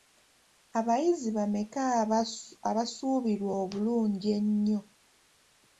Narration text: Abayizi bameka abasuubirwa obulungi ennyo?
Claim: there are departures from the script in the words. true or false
false